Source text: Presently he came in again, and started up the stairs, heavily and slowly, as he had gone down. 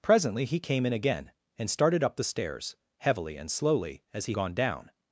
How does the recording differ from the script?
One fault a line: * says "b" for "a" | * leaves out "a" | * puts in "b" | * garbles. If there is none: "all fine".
* leaves out "had"